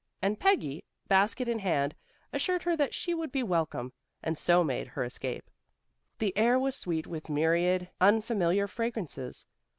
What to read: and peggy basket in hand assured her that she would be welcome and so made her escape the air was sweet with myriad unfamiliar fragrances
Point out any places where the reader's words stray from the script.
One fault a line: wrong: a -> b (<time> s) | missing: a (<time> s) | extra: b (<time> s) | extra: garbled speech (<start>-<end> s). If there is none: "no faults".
no faults